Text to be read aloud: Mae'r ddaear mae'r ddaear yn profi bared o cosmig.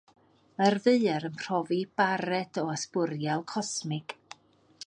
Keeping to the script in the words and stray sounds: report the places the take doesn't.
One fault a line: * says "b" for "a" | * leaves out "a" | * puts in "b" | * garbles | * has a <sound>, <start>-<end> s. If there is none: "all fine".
* leaves out "mae'r ddaear"
* puts in "ysbwriel"